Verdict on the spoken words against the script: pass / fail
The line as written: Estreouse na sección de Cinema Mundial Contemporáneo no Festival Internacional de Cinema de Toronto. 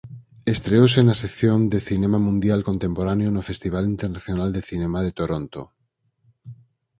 pass